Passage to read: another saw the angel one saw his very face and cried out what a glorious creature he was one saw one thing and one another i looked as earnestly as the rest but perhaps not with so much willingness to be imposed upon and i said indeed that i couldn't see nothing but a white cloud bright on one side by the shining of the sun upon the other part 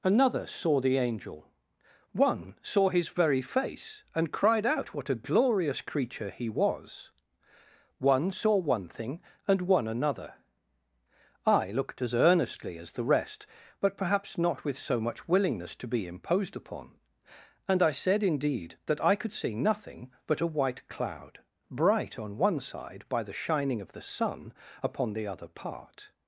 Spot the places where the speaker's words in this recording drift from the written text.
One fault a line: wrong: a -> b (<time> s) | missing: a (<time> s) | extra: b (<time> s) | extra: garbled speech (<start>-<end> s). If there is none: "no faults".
wrong: couldn't -> could (19.2 s)